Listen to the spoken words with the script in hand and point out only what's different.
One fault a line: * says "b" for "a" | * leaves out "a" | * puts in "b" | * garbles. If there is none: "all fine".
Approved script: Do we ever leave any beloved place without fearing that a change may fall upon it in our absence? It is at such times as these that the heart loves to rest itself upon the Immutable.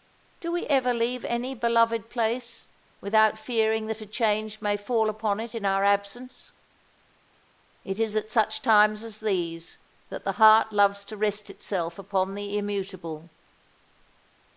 all fine